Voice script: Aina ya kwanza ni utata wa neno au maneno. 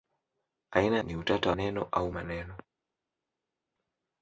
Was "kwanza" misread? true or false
true